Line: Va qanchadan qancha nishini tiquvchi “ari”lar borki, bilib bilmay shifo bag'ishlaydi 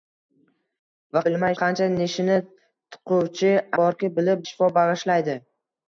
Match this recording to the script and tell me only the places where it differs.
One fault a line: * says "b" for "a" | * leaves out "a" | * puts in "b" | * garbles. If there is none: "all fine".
* says "bilmay" for "qanchadan"
* leaves out "ari”lar"
* leaves out "bilmay"